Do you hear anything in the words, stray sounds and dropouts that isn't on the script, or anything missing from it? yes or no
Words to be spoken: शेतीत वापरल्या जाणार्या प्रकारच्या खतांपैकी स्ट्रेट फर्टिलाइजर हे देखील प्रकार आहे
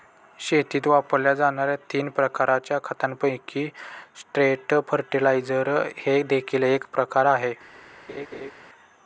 yes